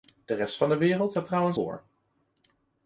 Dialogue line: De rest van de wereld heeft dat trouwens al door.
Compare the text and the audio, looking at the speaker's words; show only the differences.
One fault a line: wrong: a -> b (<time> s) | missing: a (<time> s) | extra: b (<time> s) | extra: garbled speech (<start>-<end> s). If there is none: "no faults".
missing: heeft (1.1 s)
missing: al (1.6 s)